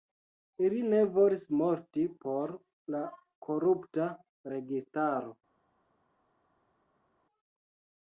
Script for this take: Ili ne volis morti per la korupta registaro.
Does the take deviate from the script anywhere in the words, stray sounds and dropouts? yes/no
yes